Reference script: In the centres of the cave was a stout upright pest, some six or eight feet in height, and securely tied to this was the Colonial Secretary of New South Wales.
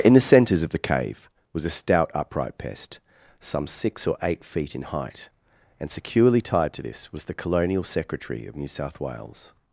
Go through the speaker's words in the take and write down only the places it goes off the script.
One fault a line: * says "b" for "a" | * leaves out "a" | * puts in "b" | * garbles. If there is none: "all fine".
all fine